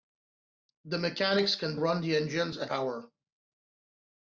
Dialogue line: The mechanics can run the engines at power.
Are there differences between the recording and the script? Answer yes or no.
no